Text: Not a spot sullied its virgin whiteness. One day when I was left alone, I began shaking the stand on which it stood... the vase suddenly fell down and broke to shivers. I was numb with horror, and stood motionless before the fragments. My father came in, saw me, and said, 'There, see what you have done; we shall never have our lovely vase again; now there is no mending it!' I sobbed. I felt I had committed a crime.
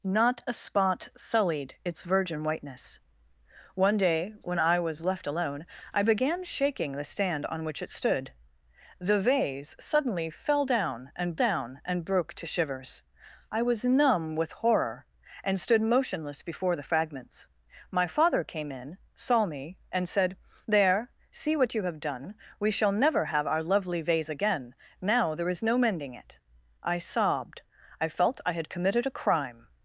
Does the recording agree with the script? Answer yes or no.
no